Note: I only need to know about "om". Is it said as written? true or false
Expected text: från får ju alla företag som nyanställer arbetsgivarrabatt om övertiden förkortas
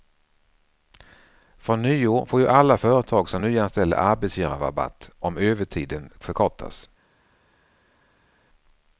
true